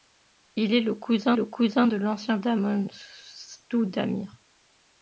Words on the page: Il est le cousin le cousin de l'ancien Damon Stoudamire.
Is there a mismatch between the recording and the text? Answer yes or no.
no